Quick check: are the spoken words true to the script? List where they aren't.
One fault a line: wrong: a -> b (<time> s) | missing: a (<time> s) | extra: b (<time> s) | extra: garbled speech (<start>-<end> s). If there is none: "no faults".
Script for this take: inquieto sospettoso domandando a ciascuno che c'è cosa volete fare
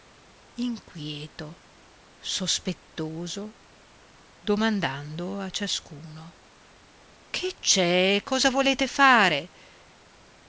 no faults